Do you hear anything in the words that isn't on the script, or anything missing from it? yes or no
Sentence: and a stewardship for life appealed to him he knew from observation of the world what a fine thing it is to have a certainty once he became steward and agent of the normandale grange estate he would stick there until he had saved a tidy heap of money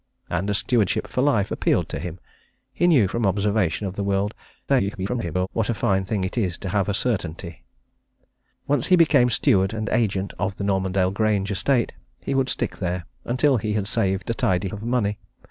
yes